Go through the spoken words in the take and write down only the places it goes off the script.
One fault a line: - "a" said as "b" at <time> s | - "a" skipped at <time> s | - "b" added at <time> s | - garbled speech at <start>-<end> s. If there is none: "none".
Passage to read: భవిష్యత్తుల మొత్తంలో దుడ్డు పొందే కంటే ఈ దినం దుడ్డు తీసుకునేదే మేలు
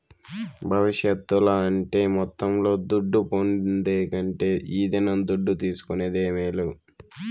- "అంటే" added at 1.6 s